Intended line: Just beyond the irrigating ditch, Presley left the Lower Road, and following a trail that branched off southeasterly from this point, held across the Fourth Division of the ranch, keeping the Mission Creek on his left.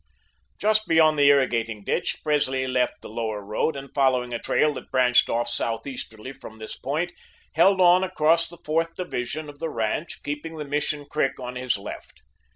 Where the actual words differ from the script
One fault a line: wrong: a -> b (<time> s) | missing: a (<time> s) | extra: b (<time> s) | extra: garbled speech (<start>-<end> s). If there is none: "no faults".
extra: on (7.8 s)